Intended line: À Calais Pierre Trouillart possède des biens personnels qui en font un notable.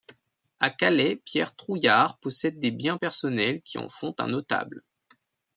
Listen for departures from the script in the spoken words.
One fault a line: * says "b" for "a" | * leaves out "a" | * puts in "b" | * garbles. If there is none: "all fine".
all fine